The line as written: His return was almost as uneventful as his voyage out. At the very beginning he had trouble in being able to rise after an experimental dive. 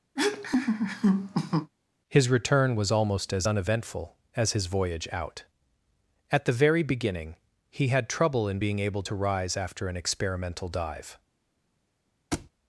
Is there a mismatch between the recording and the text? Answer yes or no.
no